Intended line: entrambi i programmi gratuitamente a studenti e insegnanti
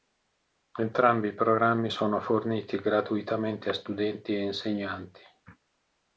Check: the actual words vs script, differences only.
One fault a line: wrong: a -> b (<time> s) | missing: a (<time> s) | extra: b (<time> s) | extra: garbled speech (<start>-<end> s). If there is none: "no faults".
extra: sono forniti (1.9 s)